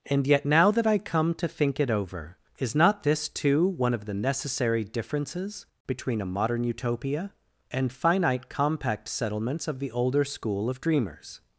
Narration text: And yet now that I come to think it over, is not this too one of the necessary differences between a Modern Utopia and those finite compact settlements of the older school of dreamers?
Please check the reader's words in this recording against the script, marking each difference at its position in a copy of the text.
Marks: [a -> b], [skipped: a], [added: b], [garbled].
And yet now that I come to think it over, is not this too one of the necessary differences between a Modern Utopia and [skipped: those] finite compact settlements of the older school of dreamers?